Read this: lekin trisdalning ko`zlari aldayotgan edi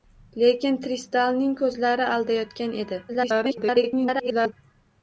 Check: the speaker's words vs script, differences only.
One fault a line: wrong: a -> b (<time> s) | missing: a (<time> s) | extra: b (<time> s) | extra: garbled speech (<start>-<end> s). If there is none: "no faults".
extra: garbled speech (3.1-4.5 s)